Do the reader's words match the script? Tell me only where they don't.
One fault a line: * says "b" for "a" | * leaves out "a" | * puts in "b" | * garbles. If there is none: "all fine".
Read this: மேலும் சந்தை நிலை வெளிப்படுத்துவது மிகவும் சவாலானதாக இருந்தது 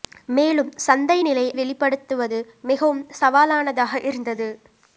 all fine